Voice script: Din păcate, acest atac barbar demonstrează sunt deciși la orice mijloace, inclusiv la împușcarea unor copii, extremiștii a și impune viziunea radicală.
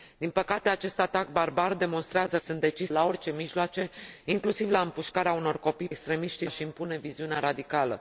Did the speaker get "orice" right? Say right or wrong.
right